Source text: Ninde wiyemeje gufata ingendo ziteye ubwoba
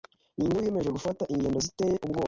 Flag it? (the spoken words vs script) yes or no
no